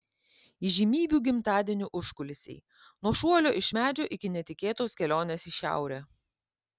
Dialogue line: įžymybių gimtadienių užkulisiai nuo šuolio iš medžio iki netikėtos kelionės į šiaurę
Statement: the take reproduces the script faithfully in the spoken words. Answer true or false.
true